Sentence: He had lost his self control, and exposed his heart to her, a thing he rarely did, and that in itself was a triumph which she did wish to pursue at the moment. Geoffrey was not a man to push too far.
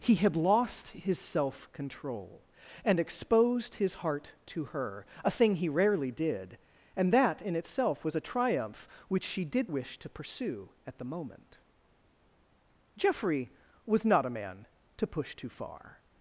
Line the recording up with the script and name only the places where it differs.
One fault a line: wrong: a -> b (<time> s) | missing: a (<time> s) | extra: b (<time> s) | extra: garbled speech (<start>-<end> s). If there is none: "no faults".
no faults